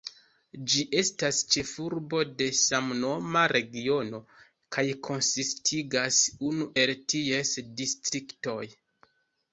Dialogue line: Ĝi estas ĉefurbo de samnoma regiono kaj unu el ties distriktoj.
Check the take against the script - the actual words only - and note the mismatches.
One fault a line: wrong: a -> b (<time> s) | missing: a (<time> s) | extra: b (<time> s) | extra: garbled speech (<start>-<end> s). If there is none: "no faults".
extra: konsistigas (5.1 s)